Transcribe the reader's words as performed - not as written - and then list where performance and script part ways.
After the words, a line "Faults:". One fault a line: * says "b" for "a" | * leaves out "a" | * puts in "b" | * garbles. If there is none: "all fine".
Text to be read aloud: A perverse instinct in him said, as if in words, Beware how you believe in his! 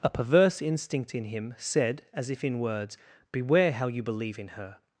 A perverse instinct in him said, as if in words, Beware how you believe in her!
Faults:
* says "her" for "his"